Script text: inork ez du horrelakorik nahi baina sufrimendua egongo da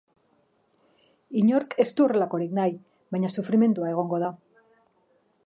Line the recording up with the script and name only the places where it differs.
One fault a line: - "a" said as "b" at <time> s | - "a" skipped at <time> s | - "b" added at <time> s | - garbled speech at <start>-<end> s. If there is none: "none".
none